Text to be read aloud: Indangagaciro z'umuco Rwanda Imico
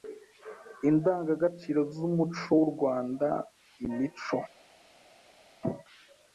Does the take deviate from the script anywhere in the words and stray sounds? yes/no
yes